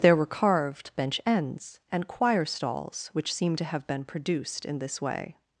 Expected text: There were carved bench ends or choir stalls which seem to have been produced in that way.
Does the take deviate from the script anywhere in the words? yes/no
yes